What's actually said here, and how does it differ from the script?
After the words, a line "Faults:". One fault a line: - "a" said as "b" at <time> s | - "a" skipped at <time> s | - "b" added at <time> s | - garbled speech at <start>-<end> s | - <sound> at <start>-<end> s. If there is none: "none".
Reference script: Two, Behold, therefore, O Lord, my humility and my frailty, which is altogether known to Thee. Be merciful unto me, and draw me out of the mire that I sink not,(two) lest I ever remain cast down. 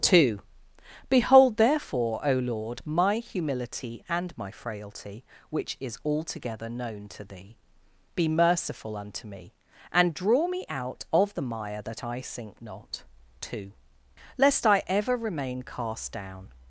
Two, Behold, therefore, O Lord, my humility and my frailty, which is altogether known to Thee. Be merciful unto me, and draw me out of the mire that I sink not,(two) lest I ever remain cast down.
Faults:
none